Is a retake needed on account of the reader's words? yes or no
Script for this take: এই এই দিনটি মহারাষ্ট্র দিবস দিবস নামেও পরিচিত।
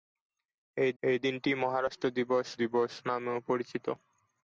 no